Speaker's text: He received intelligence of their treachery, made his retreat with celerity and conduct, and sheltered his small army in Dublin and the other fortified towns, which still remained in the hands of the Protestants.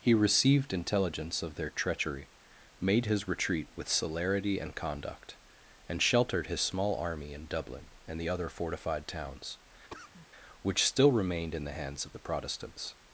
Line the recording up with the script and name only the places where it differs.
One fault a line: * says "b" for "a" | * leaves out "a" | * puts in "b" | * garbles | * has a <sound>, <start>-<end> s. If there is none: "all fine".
* has a cough, 9.9-10.3 s